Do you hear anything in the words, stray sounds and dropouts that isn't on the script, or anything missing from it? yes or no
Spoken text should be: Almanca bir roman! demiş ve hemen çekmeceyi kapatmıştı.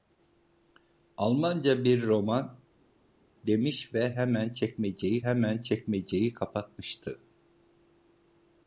yes